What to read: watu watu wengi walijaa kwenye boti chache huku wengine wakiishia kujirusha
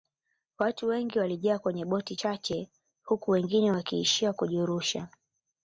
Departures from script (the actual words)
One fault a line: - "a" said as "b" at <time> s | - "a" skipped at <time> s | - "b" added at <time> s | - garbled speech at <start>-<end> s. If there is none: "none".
- "watu" skipped at 0.9 s